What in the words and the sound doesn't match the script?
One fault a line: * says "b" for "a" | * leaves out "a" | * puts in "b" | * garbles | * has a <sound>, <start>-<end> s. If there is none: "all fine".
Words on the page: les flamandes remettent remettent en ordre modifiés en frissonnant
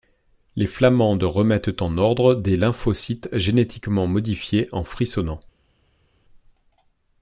* leaves out "remettent"
* puts in "des lymphocytes génétiquement"